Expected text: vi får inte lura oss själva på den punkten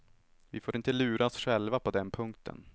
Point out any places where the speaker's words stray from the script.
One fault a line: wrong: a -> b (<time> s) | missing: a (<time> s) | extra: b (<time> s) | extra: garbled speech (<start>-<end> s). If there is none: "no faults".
no faults